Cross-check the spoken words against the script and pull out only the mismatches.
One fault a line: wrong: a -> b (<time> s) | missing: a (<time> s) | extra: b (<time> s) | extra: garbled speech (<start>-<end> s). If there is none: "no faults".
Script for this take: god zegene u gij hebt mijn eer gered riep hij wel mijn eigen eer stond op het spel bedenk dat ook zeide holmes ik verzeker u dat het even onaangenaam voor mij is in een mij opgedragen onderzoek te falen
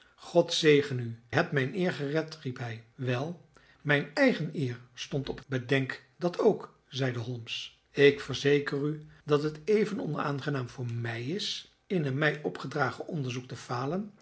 missing: gij (1.2 s)
missing: spel (5.5 s)